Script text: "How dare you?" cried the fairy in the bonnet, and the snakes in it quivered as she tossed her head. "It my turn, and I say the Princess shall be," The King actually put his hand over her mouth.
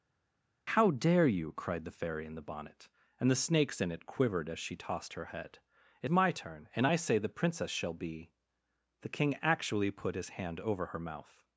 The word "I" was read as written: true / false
true